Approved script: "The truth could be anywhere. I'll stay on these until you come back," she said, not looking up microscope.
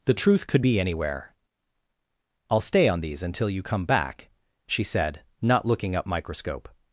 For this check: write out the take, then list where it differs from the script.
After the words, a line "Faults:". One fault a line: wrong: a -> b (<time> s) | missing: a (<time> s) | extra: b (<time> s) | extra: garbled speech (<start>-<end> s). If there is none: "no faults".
"The truth could be anywhere. I'll stay on these until you come back," she said, not looking up microscope.
Faults:
no faults